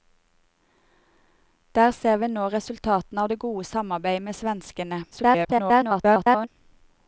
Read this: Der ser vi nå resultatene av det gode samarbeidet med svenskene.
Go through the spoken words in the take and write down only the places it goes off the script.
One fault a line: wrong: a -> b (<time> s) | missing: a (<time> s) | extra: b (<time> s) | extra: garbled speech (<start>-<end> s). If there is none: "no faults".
extra: garbled speech (5.1-6.5 s)